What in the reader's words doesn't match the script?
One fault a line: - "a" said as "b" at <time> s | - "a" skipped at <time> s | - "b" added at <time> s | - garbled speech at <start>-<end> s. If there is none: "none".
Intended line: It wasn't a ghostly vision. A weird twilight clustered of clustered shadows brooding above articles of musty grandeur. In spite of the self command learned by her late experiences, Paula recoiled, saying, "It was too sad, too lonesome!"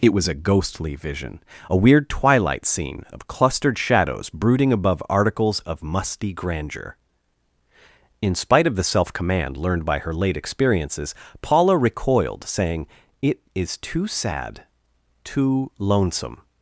- "wasn't" said as "was" at 0.1 s
- "clustered" said as "scene" at 2.7 s
- "was" said as "is" at 13.6 s